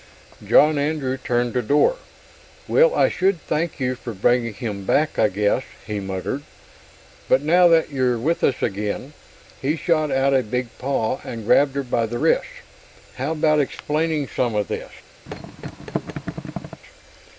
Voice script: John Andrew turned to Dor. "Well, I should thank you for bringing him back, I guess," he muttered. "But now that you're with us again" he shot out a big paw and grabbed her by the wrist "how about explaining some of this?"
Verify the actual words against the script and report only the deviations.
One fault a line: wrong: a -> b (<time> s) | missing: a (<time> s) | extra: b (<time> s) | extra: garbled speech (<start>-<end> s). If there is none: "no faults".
no faults